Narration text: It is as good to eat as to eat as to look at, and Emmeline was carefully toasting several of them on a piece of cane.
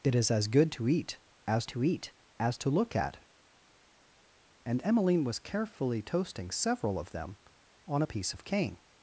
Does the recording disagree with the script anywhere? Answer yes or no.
no